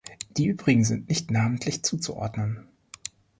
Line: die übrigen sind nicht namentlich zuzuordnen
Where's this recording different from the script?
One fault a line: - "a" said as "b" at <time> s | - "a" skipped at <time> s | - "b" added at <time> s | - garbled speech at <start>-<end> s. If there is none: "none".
none